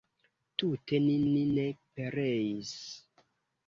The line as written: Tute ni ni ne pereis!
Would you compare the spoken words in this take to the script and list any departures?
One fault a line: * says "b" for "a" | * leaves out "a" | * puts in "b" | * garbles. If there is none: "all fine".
all fine